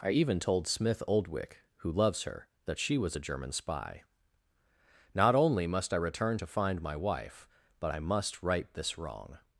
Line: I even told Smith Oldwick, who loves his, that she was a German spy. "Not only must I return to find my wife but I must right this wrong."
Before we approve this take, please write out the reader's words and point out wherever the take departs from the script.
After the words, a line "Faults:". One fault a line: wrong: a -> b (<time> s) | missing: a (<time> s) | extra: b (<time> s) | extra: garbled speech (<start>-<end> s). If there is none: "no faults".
I even told Smith Oldwick, who loves her, that she was a German spy. "Not only must I return to find my wife but I must right this wrong."
Faults:
wrong: his -> her (2.2 s)